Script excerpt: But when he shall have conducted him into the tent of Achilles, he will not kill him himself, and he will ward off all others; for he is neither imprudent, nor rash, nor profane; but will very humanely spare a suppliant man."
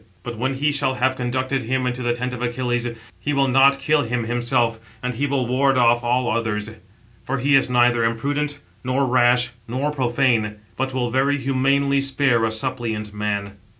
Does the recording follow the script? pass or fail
pass